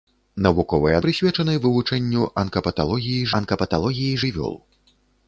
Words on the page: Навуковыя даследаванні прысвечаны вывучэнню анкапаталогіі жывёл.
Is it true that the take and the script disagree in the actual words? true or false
true